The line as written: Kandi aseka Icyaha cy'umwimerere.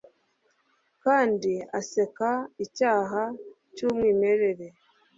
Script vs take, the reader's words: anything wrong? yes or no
no